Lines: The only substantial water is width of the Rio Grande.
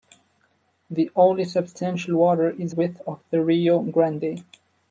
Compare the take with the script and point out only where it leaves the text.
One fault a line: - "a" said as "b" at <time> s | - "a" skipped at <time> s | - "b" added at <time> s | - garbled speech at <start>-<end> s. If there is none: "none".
none